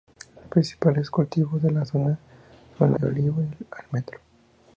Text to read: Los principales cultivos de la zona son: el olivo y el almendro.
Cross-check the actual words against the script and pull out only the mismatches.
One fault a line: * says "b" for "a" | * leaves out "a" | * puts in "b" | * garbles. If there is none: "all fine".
all fine